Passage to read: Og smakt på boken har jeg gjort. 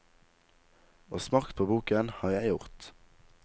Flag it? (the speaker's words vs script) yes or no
no